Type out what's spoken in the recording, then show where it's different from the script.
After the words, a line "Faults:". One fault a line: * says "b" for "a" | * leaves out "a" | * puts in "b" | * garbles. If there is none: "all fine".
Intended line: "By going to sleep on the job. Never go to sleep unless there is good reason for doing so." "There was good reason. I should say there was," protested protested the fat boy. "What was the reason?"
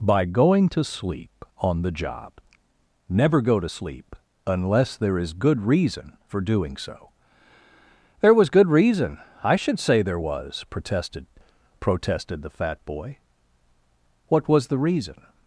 "By going to sleep on the job. Never go to sleep unless there is good reason for doing so." "There was good reason. I should say there was," protested protested the fat boy. "What was the reason?"
Faults:
all fine